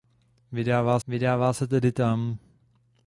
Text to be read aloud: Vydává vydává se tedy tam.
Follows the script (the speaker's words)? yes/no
yes